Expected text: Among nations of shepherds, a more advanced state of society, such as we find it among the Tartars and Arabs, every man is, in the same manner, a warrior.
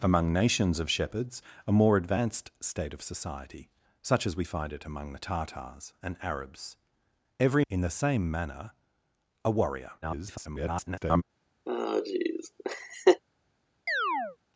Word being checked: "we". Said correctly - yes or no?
yes